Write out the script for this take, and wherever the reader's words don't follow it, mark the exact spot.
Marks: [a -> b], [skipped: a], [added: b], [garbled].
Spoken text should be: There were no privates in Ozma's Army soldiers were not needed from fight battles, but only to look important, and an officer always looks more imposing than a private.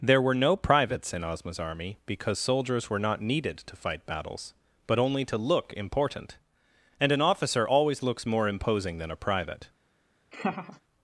There were no privates in Ozma's Army [added: because] soldiers were not needed [from -> to] fight battles, but only to look important, and an officer always looks more imposing than a private.